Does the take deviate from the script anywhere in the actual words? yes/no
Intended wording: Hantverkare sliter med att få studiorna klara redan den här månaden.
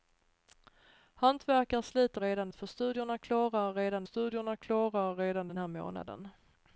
yes